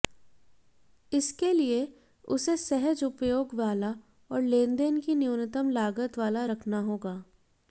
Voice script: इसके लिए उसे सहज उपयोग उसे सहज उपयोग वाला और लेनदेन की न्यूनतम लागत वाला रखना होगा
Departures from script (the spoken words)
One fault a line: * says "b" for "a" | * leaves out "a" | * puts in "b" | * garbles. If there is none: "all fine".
* leaves out "उसे सहज उपयोग"